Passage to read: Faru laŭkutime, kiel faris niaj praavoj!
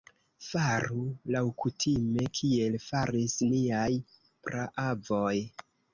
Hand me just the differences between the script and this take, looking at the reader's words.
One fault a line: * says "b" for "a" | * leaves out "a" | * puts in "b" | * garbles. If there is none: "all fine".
all fine